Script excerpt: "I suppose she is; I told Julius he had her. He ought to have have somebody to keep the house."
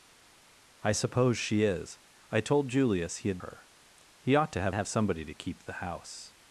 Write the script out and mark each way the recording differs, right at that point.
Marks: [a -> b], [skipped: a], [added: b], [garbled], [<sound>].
"I suppose she is; I told Julius he had her. He ought to have have somebody to keep the house."